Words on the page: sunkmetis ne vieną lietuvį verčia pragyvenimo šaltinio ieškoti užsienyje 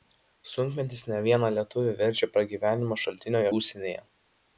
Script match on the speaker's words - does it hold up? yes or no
no